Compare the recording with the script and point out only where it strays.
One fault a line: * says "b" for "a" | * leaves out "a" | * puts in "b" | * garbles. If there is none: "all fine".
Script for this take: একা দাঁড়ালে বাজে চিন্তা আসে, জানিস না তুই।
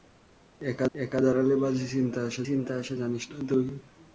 * puts in "একা"
* puts in "চিন্তা আসে"